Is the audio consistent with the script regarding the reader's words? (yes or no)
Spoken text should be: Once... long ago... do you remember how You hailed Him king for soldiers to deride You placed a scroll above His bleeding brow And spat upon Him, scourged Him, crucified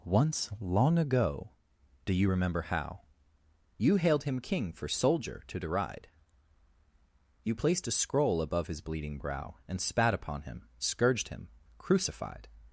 no